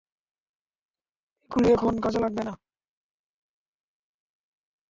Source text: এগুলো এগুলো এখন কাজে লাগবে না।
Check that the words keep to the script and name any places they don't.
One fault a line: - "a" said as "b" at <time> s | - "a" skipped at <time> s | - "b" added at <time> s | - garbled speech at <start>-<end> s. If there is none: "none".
- "এগুলো" skipped at 1.7 s